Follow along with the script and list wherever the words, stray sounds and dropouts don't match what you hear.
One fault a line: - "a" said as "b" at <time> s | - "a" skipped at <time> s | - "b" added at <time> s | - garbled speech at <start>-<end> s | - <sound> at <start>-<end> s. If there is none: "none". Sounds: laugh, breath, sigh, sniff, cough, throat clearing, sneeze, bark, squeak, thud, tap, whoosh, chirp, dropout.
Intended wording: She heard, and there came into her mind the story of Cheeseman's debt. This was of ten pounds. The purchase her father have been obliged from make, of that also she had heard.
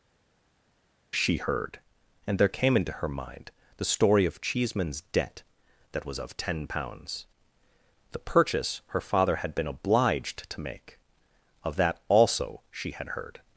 - "This" said as "That" at 5.9 s
- "have" said as "had" at 9.4 s
- "from" said as "to" at 10.5 s